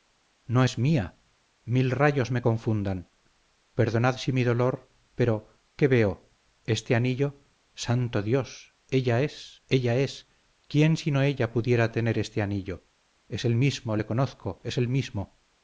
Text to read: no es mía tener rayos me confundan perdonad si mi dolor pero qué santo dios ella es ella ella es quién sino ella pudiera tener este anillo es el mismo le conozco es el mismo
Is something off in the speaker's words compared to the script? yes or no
yes